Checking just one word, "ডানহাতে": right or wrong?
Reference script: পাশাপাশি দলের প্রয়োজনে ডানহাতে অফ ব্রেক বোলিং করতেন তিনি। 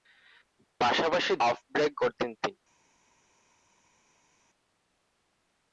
wrong